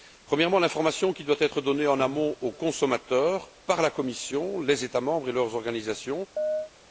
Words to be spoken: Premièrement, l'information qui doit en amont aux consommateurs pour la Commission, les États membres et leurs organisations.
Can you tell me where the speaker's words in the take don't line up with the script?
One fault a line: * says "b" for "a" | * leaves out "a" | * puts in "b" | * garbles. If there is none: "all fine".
* puts in "être donnée"
* says "par" for "pour"